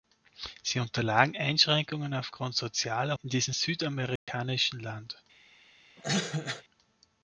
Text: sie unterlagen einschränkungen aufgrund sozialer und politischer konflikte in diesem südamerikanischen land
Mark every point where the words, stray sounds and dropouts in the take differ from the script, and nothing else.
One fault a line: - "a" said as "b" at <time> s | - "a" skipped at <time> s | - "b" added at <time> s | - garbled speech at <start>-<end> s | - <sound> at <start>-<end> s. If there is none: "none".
- "und politischer konflikte" skipped at 3.1 s
- dropout at 4.2-4.3 s
- cough at 6.0-6.6 s